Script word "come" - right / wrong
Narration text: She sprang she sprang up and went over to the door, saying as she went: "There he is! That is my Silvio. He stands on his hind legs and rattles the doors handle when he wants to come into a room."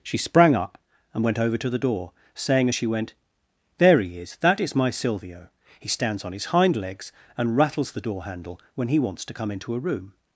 right